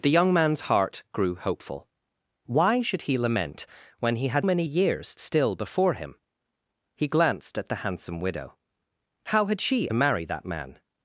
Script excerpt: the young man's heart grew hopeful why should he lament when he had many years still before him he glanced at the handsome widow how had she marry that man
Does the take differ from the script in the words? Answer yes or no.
no